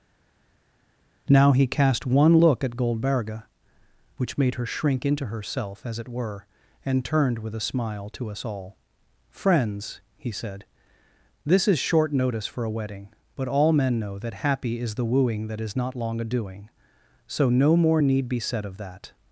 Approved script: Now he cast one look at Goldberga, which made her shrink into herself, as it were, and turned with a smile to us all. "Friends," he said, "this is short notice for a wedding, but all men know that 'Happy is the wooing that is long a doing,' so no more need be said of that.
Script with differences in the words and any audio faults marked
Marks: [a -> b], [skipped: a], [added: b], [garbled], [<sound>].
Now he cast one look at Goldberga, which made her shrink into herself, as it were, and turned with a smile to us all. "Friends," he said, "this is short notice for a wedding, but all men know that 'Happy is the wooing that is [added: not] long a doing,' so no more need be said of that.